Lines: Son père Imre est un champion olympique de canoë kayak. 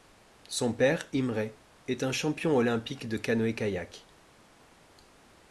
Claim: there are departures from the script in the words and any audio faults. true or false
false